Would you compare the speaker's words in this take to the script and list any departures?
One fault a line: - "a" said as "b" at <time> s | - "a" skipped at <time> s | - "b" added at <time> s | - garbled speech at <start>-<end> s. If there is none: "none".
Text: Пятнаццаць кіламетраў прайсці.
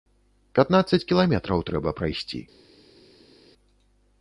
- "трэба" added at 1.7 s